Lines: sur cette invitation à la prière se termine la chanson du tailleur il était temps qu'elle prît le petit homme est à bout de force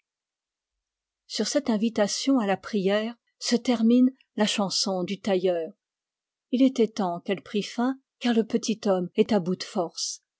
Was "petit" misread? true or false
false